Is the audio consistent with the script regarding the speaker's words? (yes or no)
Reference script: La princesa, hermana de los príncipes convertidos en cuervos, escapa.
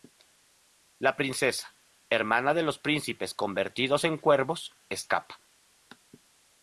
yes